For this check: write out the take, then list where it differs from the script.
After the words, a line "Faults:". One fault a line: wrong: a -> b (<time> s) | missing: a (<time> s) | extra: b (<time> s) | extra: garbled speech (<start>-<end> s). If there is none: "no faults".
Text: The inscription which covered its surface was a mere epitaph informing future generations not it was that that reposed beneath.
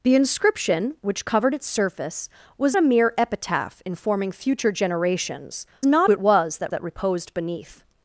The inscription which covered its surface was a mere epitaph informing future generations not it was that that reposed beneath.
Faults:
no faults